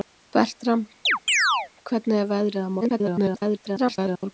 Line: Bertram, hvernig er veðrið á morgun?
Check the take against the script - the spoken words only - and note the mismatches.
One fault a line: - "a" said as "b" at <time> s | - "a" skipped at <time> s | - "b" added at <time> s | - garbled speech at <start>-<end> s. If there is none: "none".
- garbled speech at 2.8-4.2 s